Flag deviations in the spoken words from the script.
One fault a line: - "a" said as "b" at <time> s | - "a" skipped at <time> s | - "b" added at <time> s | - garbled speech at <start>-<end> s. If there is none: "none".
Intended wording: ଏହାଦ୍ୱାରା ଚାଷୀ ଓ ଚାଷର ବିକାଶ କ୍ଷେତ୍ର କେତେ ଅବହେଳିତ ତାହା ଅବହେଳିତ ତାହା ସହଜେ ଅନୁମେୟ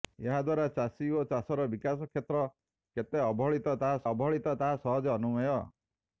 none